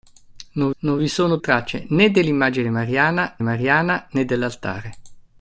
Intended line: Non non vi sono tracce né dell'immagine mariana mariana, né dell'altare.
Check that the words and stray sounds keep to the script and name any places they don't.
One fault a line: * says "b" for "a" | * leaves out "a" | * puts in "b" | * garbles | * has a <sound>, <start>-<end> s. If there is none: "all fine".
all fine